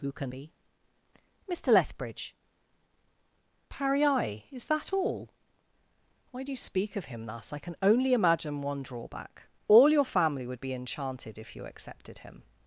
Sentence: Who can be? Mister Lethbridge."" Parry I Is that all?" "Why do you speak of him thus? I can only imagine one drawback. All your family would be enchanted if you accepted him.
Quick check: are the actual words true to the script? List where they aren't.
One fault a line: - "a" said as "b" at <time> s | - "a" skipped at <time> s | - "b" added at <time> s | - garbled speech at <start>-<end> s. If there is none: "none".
none